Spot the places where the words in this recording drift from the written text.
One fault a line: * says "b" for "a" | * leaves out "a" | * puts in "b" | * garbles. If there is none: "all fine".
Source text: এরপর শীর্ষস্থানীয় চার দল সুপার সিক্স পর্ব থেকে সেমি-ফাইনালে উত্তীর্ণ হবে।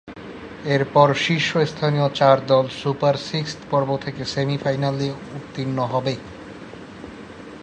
all fine